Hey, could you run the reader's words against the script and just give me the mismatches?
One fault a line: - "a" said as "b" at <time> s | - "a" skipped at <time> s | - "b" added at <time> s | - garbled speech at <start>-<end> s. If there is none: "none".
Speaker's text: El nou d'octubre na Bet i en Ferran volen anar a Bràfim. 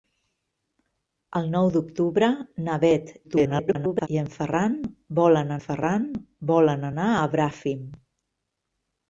- garbled speech at 3.2-4.1 s
- "Ferran volen" added at 5.6 s